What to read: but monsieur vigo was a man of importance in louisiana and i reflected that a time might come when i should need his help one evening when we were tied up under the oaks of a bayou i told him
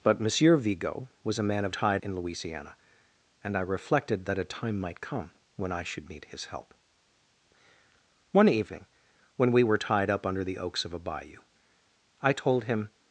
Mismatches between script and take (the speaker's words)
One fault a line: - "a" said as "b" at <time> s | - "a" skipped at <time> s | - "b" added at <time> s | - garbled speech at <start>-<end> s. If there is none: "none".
- "importance" said as "tied" at 1.7 s